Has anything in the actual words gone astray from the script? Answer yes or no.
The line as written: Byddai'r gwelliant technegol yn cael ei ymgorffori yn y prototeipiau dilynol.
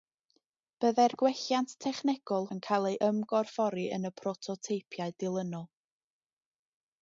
no